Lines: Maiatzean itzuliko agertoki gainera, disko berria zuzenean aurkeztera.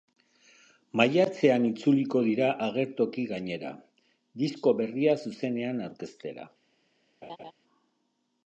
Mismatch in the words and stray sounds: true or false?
true